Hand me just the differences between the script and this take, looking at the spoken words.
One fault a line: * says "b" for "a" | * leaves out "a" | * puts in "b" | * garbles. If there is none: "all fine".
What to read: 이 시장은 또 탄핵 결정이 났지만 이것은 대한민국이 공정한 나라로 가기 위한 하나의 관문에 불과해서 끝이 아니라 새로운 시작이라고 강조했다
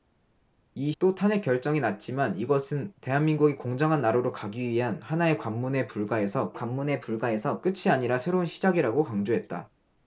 * leaves out "시장은"
* puts in "관문에 불과해서"